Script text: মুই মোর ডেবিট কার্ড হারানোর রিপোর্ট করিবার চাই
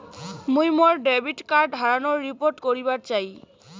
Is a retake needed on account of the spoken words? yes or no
no